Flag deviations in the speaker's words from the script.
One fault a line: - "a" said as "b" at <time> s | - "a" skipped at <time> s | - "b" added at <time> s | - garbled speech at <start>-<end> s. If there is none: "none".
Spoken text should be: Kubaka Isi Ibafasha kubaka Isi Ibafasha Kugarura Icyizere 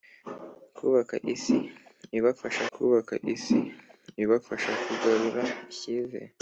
none